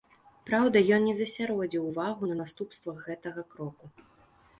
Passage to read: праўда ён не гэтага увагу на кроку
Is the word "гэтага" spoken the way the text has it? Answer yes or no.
no